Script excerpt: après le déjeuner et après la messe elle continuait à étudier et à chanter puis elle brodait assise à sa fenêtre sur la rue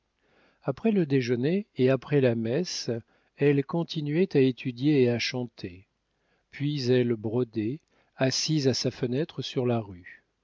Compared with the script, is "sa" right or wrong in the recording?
right